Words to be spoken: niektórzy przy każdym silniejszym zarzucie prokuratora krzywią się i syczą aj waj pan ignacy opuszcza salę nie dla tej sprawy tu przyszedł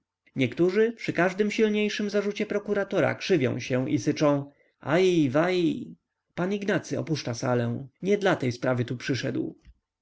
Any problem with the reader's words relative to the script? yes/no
no